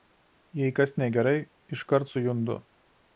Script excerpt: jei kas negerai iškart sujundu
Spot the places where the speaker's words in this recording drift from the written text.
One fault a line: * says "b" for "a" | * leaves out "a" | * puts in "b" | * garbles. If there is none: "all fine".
all fine